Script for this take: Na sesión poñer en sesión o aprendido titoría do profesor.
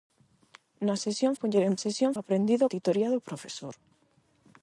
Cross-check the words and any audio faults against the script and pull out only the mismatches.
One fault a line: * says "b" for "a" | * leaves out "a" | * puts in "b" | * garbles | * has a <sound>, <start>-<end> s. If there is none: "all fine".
all fine